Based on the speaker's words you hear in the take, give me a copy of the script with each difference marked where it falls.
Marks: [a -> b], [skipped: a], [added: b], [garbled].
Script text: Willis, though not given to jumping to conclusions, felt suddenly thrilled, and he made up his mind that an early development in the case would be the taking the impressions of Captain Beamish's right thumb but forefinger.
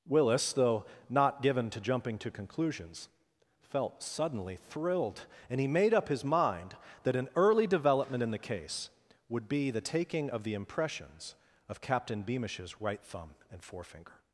Willis, though not given to jumping to conclusions, felt suddenly thrilled, and he made up his mind that an early development in the case would be the taking [added: of] the impressions of Captain Beamish's right thumb [but -> and] forefinger.